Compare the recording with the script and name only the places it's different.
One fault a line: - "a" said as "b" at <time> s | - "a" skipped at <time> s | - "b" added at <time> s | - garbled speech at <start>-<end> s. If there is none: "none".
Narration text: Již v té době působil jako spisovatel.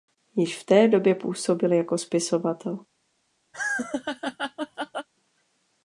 none